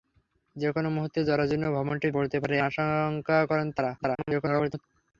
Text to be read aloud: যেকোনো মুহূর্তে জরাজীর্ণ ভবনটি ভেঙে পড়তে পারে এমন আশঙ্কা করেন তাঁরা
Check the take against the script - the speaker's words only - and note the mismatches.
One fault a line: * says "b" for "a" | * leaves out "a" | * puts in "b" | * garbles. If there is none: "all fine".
* leaves out "ভেঙে"
* leaves out "এমন"
* garbles